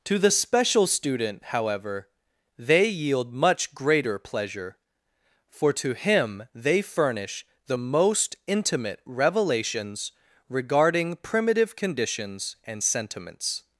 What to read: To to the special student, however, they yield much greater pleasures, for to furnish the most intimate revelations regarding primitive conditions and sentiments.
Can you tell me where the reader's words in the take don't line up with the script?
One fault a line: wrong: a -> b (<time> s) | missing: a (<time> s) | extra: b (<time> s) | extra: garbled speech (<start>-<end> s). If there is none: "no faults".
missing: to (0.2 s)
wrong: pleasures -> pleasure (4.2 s)
extra: him they (5.9 s)